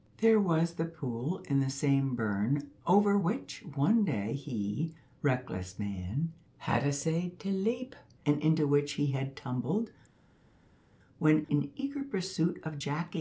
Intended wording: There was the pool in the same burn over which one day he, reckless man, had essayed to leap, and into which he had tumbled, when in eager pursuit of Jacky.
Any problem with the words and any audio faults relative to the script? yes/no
no